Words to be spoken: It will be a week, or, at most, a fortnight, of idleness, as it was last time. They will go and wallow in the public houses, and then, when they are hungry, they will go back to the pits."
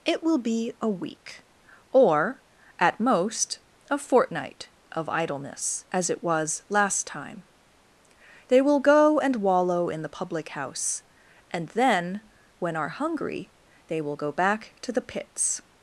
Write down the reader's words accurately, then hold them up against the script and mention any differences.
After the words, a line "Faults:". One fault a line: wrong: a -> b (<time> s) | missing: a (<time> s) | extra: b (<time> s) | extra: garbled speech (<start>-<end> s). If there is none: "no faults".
It will be a week, or, at most, a fortnight, of idleness, as it was last time. They will go and wallow in the public house, and then, when are hungry, they will go back to the pits."
Faults:
wrong: houses -> house (10.5 s)
missing: they (12.7 s)